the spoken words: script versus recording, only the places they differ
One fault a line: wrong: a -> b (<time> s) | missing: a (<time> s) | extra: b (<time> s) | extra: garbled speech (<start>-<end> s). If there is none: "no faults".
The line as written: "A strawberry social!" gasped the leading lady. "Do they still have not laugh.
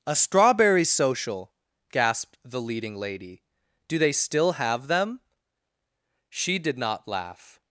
extra: them She did (4.9 s)